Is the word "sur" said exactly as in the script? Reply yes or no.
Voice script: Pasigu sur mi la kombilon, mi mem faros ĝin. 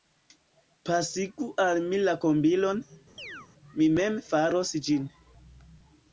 no